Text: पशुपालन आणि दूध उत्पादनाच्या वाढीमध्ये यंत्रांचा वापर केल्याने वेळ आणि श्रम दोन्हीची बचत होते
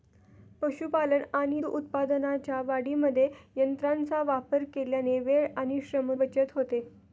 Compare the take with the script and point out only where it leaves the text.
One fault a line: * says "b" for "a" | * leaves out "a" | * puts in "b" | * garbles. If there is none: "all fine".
* leaves out "दूध"
* leaves out "दोन्हीची"